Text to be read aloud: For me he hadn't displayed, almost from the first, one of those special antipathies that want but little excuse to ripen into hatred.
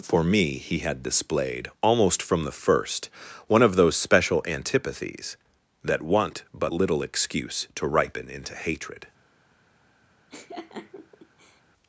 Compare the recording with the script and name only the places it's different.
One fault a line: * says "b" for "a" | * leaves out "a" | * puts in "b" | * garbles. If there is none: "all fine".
* says "had" for "hadn't"